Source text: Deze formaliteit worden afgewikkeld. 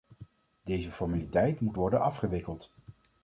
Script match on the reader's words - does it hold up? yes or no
no